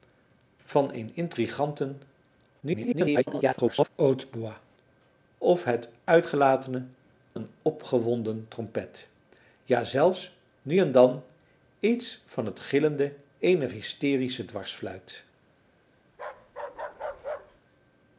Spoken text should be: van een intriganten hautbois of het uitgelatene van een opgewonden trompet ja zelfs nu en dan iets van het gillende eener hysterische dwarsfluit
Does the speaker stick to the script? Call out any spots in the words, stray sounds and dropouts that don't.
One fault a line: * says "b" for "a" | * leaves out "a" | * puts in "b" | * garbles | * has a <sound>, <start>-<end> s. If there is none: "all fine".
* garbles
* leaves out "van"
* has a bark, 16.1-17.6 s